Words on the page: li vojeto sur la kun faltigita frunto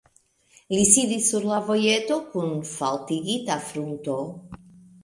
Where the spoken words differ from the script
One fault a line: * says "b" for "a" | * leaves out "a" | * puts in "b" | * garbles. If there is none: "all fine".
* says "sidis" for "vojeto"
* puts in "vojeto"